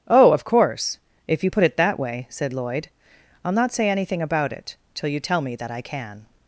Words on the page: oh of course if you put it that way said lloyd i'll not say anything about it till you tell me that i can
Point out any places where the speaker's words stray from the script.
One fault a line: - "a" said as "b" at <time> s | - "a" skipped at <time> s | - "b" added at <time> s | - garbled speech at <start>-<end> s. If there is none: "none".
none